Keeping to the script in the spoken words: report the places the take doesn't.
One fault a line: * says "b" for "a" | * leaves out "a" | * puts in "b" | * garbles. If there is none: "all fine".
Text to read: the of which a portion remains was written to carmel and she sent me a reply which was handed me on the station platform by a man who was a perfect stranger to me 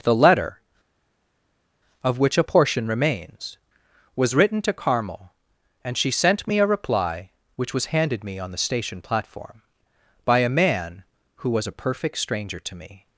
* puts in "letter"